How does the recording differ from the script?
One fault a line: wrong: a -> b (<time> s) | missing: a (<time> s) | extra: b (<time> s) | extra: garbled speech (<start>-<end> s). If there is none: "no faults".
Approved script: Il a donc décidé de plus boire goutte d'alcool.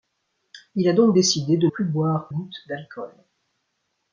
no faults